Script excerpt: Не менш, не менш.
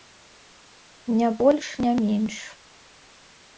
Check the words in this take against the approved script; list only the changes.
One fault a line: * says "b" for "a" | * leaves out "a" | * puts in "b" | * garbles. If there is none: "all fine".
* says "больш" for "менш"